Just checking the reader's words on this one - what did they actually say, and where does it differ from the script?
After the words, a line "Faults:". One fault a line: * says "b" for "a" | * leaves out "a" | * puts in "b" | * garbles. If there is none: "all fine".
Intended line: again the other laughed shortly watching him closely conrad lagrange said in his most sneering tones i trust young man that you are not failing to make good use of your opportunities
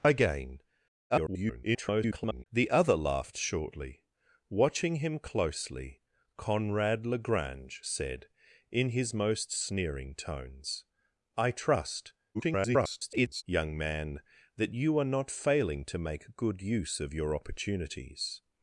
again [garbled] the other laughed shortly watching him closely conrad lagrange said in his most sneering tones i trust [garbled] young man that you are not failing to make good use of your opportunities
Faults:
* garbles
* garbles